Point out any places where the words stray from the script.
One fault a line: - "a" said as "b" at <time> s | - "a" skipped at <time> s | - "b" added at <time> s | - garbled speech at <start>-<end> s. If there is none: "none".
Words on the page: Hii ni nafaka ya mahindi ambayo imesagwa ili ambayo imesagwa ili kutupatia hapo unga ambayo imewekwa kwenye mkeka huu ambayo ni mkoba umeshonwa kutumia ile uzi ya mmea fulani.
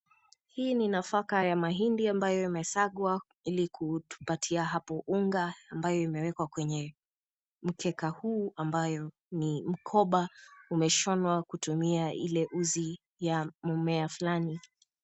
- "ambayo imesagwa ili" skipped at 3.7 s